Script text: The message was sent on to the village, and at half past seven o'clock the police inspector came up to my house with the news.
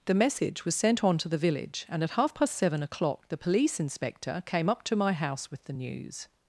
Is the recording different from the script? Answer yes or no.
no